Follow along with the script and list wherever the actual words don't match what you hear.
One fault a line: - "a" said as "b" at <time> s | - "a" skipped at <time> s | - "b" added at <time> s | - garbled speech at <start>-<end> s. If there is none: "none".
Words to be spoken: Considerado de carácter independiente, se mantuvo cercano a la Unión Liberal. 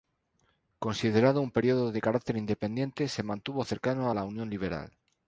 - "un periódico" added at 1.4 s